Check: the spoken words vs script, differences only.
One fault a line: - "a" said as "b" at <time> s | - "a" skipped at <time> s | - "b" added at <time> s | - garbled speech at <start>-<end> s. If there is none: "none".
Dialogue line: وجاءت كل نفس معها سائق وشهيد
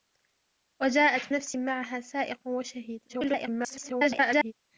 - "كل" skipped at 1.2 s
- garbled speech at 3.1-4.5 s